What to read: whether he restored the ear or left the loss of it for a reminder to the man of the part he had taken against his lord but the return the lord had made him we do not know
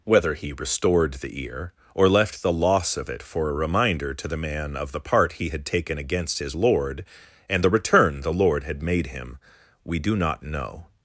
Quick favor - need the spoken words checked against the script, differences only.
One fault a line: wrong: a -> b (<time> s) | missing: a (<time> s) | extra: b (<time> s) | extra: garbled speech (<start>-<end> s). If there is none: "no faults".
wrong: but -> and (7.5 s)